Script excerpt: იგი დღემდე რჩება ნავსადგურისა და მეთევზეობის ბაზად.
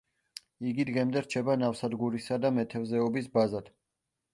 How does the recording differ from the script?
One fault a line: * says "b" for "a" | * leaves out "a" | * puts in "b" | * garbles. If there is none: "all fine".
all fine